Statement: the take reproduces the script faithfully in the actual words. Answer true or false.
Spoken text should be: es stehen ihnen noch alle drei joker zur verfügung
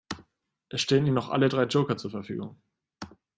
true